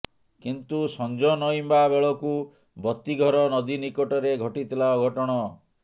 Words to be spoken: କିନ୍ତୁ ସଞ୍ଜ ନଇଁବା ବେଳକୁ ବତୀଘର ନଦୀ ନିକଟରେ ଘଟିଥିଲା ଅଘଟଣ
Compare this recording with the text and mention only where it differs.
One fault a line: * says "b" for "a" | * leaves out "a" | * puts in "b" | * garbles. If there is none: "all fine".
all fine